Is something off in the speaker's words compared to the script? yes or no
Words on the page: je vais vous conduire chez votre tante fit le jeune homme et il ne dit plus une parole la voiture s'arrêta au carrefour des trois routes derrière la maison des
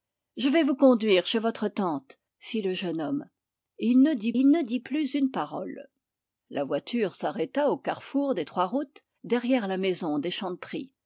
yes